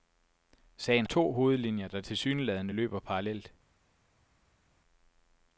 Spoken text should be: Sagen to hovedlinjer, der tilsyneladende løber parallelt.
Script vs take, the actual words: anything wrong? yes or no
no